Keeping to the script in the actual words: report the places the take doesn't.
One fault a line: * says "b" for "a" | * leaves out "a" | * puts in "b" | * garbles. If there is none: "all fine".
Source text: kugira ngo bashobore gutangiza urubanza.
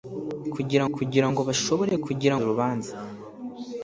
* puts in "kugira"
* says "kugira" for "gutangiza"